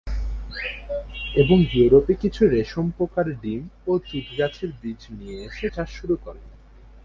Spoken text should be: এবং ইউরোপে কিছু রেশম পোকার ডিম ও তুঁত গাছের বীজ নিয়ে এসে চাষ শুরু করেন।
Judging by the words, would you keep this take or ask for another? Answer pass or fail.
pass